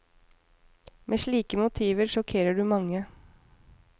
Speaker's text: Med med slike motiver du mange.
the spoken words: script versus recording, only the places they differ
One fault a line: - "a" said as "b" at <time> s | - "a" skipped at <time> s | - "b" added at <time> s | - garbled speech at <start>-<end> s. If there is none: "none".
- "med" skipped at 1.2 s
- "sjokkerer" added at 2.1 s